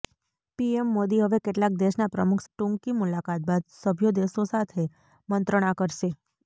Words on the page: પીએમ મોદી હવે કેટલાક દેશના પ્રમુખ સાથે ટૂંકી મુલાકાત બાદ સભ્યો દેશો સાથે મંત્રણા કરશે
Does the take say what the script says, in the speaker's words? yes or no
no